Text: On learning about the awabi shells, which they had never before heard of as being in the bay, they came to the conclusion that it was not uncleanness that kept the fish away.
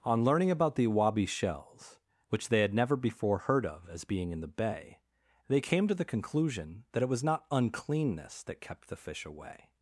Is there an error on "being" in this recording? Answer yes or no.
no